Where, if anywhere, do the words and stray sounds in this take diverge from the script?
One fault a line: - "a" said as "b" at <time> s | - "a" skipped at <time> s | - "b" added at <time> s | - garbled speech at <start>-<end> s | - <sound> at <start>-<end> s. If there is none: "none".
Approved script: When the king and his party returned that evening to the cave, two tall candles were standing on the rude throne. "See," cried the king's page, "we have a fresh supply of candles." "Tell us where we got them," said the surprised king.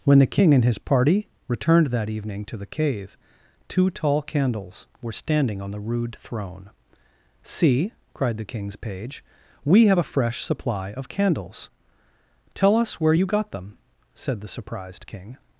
- "we" said as "you" at 13.1 s